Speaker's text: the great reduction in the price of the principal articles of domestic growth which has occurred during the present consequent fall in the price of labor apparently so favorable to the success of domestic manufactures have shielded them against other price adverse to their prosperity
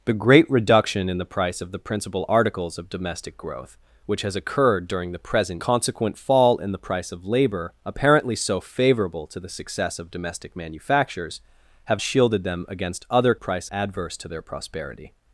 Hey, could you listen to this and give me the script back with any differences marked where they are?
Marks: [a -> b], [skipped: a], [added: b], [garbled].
the great reduction in the price of the principal articles of domestic growth which has occurred during the present consequent fall in the price of labor apparently so favorable to the success of domestic manufactures have shielded them against other price adverse to their prosperity